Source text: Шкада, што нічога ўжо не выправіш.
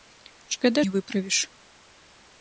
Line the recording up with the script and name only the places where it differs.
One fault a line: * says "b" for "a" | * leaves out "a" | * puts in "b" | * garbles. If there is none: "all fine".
* leaves out "што нічога ўжо"